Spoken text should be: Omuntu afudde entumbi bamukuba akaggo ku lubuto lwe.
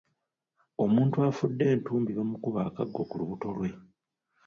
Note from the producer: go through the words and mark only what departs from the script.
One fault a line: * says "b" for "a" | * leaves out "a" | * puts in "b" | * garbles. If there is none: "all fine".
all fine